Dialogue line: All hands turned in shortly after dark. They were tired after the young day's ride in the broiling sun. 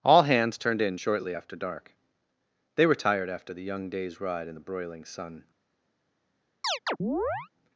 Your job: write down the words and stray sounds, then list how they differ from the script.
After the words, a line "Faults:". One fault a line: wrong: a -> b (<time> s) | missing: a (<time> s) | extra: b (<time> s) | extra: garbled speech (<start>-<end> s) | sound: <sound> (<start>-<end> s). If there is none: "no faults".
All hands turned in shortly after dark. They were tired after the young day's ride in the broiling sun.
Faults:
sound: chirp (6.6-7.5 s)